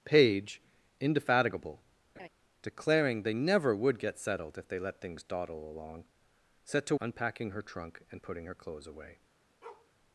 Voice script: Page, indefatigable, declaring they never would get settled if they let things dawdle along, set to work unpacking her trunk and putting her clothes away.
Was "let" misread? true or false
false